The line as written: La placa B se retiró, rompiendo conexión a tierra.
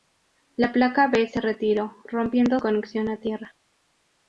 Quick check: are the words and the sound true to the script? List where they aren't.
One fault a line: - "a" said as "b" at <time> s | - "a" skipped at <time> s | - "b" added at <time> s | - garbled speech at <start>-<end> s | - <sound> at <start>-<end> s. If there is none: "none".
none